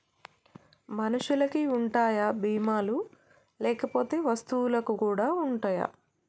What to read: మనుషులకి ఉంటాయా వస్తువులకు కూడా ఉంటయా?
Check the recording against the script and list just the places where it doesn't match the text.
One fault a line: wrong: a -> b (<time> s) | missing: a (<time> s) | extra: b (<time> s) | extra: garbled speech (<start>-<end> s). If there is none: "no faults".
extra: బీమా లు లేకపోతే (2.4 s)